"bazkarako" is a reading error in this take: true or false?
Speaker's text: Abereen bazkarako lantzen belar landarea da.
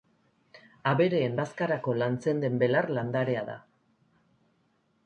false